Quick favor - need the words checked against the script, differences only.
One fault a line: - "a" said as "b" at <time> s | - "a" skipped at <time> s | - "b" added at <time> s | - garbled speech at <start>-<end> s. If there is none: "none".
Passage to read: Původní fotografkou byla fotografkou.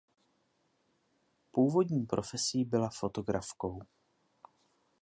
- "fotografkou" said as "profesí" at 2.0 s